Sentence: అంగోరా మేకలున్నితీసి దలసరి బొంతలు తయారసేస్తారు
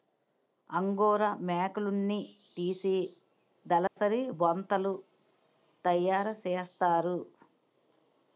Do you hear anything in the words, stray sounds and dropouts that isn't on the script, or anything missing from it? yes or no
yes